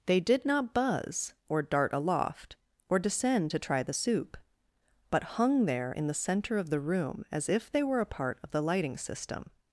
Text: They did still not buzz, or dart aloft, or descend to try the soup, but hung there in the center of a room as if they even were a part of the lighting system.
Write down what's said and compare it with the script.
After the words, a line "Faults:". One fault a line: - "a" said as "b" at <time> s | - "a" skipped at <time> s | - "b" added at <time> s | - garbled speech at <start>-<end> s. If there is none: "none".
They did not buzz, or dart aloft, or descend to try the soup, but hung there in the center of the room as if they were a part of the lighting system.
Faults:
- "still" skipped at 0.5 s
- "a" said as "the" at 6.7 s
- "even" skipped at 7.8 s